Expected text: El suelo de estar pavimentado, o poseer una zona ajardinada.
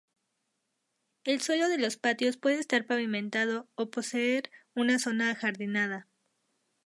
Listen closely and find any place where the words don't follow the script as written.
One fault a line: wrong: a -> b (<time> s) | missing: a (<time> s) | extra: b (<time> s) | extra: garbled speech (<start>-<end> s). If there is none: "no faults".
extra: los patios puede (1.8 s)